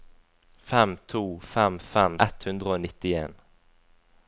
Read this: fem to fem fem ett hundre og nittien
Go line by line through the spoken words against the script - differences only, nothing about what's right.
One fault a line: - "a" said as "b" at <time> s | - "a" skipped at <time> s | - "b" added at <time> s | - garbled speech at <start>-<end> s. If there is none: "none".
none